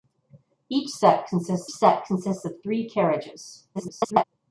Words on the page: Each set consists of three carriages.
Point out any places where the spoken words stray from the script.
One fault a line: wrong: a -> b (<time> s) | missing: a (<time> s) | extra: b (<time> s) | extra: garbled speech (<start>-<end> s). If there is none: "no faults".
extra: set consists (1.7 s)
extra: garbled speech (3.7-4.2 s)